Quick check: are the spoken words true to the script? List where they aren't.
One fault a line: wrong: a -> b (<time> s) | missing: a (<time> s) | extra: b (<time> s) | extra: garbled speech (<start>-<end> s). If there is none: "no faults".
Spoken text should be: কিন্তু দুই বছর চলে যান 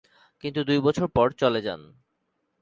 extra: পর (1.1 s)